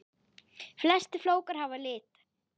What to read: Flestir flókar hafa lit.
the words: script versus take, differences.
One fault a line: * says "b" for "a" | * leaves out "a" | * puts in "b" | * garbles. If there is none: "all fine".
all fine